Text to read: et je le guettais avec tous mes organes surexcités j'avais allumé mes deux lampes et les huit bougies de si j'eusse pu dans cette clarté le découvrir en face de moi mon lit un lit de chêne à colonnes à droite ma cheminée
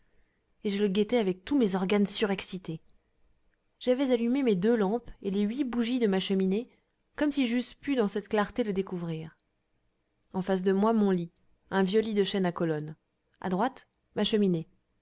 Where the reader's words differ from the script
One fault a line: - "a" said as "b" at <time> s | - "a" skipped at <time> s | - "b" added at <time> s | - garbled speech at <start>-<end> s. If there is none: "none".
- "ma cheminée comme" added at 6.1 s
- "vieux" added at 11.8 s